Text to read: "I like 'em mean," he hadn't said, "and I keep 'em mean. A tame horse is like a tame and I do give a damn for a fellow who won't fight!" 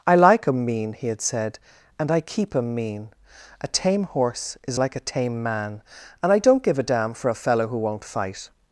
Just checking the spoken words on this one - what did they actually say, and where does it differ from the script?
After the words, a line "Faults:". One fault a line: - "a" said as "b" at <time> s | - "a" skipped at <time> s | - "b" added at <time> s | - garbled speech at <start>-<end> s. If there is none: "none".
"I like 'em mean," he had said, "and I keep 'em mean. A tame horse is like a tame man, and I don't give a damn for a fellow who won't fight!"
Faults:
- "hadn't" said as "had" at 1.1 s
- "man" added at 5.4 s
- "do" said as "don't" at 6.4 s